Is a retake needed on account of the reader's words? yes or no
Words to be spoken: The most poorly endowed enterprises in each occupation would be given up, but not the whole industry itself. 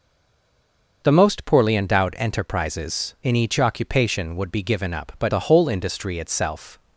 yes